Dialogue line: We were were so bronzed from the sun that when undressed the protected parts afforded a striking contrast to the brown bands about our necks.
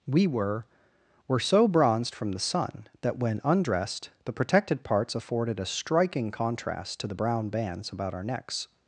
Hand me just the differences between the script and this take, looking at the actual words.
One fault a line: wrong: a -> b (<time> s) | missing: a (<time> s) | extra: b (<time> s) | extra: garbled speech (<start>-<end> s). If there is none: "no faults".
no faults